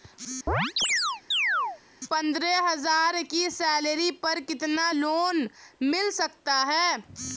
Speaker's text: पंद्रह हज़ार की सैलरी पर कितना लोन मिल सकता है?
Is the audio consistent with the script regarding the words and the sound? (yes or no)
no